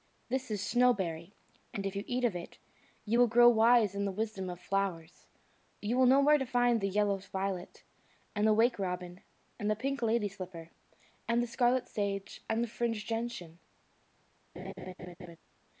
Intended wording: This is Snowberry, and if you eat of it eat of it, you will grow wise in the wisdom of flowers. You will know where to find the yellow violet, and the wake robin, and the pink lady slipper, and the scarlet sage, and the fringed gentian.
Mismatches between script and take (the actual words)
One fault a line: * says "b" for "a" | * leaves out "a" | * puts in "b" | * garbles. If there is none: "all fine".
* leaves out "eat of it"